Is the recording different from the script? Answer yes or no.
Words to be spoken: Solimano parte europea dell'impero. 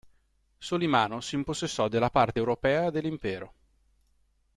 yes